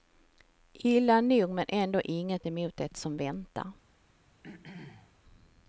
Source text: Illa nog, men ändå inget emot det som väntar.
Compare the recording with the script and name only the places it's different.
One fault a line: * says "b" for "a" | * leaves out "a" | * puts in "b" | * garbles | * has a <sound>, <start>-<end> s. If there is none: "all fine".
* has a throat clearing, 4.4-5.1 s